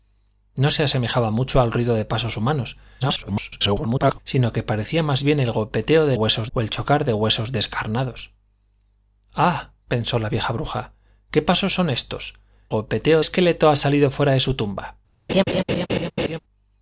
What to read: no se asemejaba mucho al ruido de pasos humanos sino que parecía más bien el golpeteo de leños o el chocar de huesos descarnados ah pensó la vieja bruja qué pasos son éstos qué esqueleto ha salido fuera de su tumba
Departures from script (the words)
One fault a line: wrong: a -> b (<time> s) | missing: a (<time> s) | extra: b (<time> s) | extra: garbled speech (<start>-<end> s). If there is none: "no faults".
extra: garbled speech (3.0-4.2 s)
wrong: leños -> huesos (6.1 s)
wrong: qué -> golpeteo (12.7 s)